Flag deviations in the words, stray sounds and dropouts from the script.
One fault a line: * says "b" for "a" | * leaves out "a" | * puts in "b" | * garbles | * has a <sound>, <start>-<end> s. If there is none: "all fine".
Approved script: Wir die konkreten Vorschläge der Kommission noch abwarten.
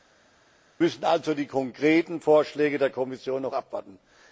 * puts in "müssen also"